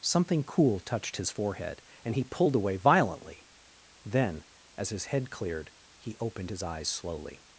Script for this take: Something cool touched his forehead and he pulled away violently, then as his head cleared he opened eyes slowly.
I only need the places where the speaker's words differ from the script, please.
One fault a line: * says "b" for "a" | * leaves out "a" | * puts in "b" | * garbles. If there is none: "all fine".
* puts in "his"